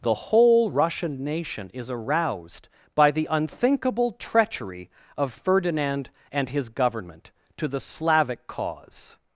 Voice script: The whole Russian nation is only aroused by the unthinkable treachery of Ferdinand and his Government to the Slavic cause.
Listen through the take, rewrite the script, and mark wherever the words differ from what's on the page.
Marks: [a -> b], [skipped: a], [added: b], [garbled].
The whole Russian nation is [skipped: only] aroused by the unthinkable treachery of Ferdinand and his Government to the Slavic cause.